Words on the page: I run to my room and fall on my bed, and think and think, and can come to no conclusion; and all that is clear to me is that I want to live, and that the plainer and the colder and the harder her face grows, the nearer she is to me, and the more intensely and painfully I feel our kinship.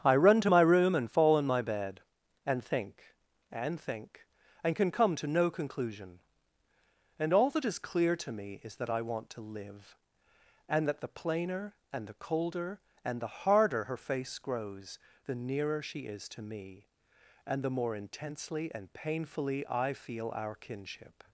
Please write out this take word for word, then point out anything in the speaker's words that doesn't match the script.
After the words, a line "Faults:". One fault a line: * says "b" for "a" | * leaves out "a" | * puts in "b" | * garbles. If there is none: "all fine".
I run to my room and fall on my bed, and think and think, and can come to no conclusion; and all that is clear to me is that I want to live, and that the plainer and the colder and the harder her face grows, the nearer she is to me, and the more intensely and painfully I feel our kinship.
Faults:
all fine